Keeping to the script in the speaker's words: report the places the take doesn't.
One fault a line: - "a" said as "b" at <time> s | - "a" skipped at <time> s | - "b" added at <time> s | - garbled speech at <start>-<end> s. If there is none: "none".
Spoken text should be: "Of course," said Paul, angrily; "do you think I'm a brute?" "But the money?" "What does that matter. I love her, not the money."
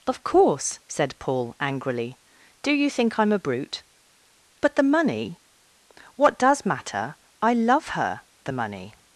- "that" skipped at 6.6 s
- "not" skipped at 8.2 s